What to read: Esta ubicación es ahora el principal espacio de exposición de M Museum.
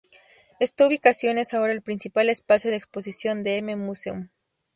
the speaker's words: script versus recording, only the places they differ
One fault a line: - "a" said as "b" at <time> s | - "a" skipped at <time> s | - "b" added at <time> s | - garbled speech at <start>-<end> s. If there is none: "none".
none